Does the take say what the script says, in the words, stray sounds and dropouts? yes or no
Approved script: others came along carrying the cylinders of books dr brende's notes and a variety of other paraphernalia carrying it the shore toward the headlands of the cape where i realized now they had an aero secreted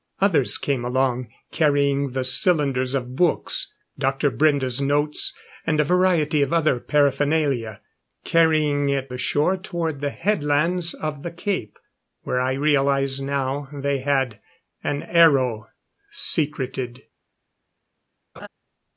no